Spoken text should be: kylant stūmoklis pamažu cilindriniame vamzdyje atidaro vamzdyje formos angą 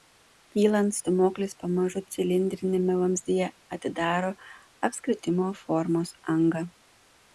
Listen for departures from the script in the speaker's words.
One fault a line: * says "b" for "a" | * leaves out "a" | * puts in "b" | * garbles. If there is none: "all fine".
* says "apskritimo" for "vamzdyje"